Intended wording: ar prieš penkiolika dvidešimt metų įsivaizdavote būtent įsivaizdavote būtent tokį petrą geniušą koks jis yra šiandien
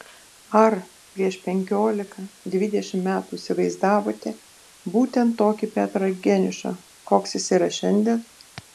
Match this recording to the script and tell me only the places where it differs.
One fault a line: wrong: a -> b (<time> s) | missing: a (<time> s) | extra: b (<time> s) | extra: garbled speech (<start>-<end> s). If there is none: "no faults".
missing: įsivaizdavote būtent (5.4 s)